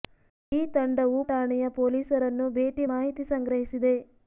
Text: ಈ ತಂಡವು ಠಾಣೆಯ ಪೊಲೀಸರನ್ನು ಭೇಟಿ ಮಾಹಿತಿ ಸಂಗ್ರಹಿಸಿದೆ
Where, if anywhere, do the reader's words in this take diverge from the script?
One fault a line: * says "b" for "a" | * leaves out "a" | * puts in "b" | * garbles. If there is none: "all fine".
all fine